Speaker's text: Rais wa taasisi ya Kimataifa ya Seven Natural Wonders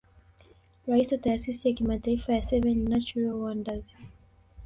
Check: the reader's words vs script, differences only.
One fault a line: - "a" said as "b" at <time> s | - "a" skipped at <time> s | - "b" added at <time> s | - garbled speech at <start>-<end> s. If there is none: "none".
none